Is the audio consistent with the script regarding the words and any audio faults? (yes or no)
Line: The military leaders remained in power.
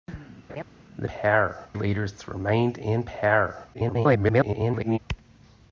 no